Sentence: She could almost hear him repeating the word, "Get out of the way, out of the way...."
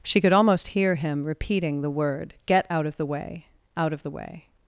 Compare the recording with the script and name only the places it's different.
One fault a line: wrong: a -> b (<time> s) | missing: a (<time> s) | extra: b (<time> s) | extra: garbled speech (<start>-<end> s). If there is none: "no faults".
no faults